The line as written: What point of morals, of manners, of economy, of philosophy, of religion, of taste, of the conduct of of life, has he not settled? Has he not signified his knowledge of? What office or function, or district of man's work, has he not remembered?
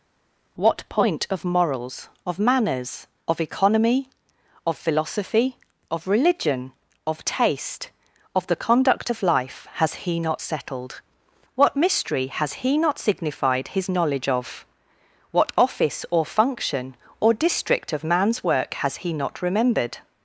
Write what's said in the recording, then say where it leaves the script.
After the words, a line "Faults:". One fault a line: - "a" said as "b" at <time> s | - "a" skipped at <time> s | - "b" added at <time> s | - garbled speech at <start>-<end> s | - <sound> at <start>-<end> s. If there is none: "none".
What point of morals, of manners, of economy, of philosophy, of religion, of taste, of the conduct of life, has he not settled? What mystery has he not signified his knowledge of? What office or function, or district of man's work, has he not remembered?
Faults:
- "of" skipped at 9.2 s
- "What mystery" added at 11.5 s